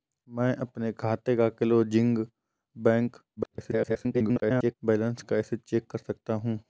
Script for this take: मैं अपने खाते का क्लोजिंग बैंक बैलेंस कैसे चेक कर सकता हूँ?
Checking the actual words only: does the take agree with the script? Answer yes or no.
no